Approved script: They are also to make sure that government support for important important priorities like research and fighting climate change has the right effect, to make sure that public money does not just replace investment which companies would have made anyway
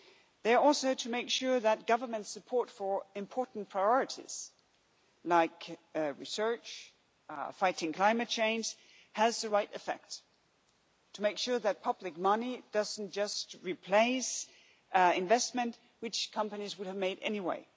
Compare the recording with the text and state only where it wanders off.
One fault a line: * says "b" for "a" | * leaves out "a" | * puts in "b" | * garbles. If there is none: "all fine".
* leaves out "important"